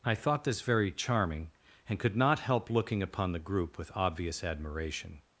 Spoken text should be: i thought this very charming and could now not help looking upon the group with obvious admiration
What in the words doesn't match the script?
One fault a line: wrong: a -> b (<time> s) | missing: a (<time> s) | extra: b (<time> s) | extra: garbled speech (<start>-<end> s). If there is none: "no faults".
missing: now (2.1 s)